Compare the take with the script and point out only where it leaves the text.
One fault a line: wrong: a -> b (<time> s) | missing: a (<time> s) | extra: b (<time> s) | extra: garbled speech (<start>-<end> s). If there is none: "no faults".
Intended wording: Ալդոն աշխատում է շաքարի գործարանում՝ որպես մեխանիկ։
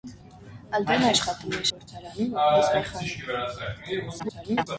missing: շաքարի (1.6 s)
extra: garbled speech (4.2-4.7 s)